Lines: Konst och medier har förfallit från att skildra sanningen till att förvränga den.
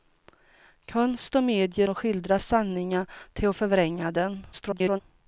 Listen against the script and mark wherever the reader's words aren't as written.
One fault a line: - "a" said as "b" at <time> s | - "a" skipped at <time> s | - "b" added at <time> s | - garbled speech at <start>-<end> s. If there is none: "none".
- "har förfallit från" skipped at 1.9 s
- garbled speech at 4.5-5.0 s